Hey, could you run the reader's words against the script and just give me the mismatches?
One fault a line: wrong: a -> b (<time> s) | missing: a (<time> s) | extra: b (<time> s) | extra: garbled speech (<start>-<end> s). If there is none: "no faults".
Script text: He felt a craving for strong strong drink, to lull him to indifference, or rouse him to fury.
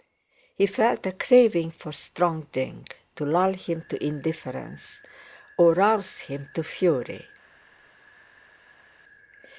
missing: strong (2.5 s)